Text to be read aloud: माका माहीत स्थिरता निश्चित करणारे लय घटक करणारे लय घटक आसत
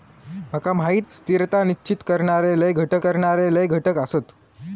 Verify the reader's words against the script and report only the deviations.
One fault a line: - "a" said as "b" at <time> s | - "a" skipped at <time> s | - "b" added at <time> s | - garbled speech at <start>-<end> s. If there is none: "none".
none